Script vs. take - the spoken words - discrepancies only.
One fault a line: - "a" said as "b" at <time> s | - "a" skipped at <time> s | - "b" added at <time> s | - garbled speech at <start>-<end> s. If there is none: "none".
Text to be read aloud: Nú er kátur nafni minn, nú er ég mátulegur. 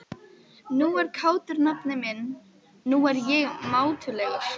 none